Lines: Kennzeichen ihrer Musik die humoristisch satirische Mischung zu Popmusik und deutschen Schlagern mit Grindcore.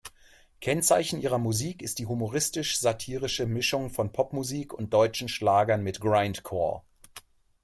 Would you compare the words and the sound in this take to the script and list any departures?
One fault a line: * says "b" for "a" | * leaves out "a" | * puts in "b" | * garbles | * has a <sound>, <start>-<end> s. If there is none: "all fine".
* puts in "ist"
* says "von" for "zu"